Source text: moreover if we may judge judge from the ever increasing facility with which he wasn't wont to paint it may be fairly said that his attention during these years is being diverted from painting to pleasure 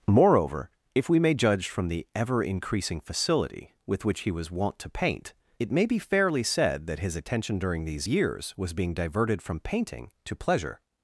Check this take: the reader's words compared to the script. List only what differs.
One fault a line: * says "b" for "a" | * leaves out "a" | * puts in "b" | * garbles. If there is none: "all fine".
* leaves out "judge"
* says "was" for "wasn't"
* says "was" for "is"